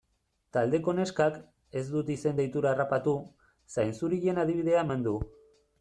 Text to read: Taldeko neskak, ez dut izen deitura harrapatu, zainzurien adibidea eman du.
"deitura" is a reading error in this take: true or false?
false